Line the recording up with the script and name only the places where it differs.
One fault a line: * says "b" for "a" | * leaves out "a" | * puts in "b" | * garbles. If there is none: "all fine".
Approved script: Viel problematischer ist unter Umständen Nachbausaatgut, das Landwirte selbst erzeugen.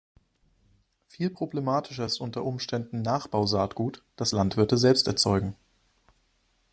all fine